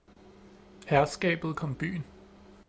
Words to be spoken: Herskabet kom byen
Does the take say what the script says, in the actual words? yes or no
yes